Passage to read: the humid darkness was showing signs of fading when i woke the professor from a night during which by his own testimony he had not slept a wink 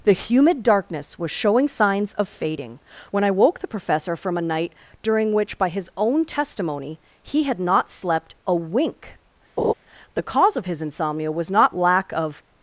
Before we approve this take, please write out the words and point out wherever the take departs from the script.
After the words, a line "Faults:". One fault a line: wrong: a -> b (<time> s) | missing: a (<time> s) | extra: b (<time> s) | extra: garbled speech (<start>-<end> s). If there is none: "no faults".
the humid darkness was showing signs of fading when i woke the professor from a night during which by his own testimony he had not slept a wink the cause of his insomnia was not lack of
Faults:
extra: the cause of his insomnia was not lack of (10.1 s)